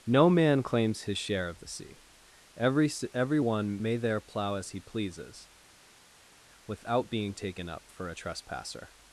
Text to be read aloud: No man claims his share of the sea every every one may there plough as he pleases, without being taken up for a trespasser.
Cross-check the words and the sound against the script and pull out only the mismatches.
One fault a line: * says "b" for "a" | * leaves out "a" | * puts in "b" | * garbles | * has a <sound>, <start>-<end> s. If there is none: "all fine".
all fine